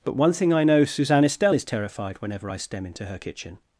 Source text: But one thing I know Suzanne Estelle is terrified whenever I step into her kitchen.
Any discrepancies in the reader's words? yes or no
yes